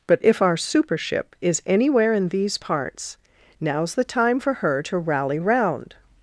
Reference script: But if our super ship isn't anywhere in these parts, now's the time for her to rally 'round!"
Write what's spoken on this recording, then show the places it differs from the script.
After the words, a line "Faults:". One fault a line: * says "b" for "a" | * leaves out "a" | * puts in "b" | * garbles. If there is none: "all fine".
But if our super ship is anywhere in these parts, now's the time for her to rally 'round!"
Faults:
* says "is" for "isn't"